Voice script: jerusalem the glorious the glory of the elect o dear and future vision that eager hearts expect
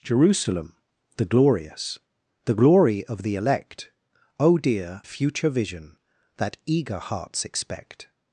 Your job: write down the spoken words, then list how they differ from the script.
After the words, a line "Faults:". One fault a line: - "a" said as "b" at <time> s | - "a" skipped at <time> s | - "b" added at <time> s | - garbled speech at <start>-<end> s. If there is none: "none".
jerusalem the glorious the glory of the elect o dear future vision that eager hearts expect
Faults:
- "and" skipped at 5.0 s